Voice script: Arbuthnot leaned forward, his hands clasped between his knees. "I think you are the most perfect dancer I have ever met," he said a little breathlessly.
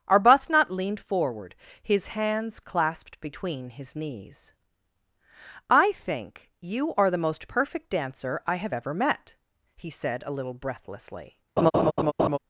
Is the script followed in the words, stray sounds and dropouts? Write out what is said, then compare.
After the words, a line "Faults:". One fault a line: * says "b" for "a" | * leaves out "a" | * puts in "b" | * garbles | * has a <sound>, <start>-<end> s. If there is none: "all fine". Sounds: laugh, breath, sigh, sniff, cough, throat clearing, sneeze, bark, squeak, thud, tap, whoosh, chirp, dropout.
Arbuthnot leaned forward, his hands clasped between his knees. "I think you are the most perfect dancer I have ever met," he said a little breathlessly.
Faults:
* has a laugh, 11.6-12.4 s